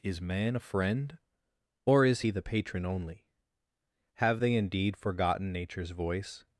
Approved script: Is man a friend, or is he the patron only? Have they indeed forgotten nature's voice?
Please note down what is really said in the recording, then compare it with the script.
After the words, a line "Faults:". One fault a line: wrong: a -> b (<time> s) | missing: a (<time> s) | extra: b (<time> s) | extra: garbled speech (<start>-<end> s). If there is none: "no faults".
Is man a friend, or is he the patron only? Have they indeed forgotten nature's voice?
Faults:
no faults